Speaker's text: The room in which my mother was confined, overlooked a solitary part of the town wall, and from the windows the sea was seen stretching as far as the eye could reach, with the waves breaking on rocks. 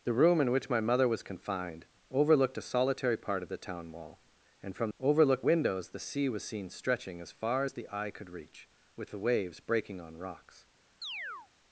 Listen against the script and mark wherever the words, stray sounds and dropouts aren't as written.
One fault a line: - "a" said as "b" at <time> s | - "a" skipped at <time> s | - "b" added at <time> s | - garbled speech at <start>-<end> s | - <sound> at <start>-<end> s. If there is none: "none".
- "the" said as "overlooked" at 5.0 s
- chirp at 11.0-11.5 s